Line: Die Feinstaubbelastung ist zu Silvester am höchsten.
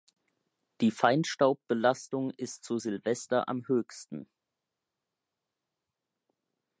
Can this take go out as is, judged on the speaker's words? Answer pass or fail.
pass